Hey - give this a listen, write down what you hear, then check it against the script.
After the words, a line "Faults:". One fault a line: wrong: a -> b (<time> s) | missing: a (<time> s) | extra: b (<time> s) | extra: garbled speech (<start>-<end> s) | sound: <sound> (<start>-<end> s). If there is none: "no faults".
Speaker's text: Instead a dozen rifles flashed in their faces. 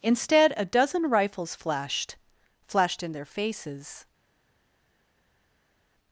Instead a dozen rifles flashed flashed in their faces.
Faults:
extra: flashed (2.6 s)